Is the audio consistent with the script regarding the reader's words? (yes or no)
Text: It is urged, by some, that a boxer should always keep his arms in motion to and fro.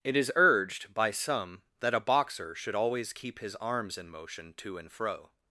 yes